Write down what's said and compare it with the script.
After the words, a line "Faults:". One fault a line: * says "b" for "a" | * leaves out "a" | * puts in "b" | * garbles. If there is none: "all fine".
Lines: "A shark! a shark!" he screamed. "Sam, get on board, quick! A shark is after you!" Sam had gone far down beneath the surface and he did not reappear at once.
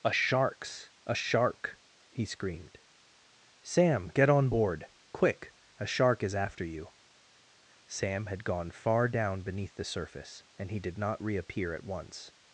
"A sharks! a shark!" he screamed. "Sam, get on board, quick! A shark is after you!" Sam had gone far down beneath the surface and he did not reappear at once.
Faults:
* says "sharks" for "shark"